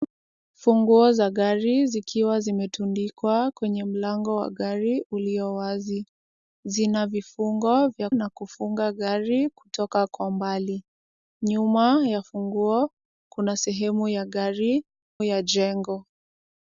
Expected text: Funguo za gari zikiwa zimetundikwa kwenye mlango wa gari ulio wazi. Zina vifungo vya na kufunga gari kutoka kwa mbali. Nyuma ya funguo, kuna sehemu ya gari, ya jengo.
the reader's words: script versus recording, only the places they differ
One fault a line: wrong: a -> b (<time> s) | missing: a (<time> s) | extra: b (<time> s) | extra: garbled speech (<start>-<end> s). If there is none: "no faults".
no faults